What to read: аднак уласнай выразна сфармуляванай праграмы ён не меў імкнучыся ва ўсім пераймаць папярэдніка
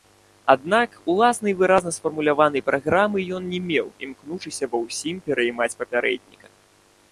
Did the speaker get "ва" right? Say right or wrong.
right